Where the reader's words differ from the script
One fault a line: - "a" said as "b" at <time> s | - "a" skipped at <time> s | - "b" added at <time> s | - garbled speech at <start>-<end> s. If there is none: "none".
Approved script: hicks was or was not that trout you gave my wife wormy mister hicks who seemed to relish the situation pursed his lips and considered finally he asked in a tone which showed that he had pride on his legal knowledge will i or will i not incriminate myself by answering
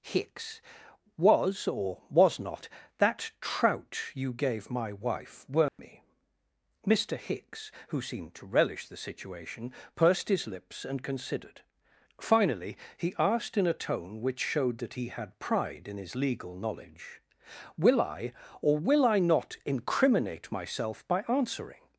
- "on" said as "in" at 15.9 s